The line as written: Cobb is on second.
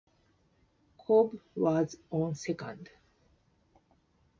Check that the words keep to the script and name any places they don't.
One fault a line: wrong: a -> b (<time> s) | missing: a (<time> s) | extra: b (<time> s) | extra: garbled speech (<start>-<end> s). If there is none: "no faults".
wrong: is -> was (1.5 s)